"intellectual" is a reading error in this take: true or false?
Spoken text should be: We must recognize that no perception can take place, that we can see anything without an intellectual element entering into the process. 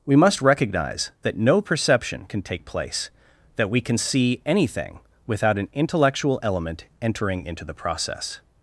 false